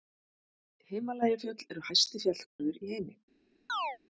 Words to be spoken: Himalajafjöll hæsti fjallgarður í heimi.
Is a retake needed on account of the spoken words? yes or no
yes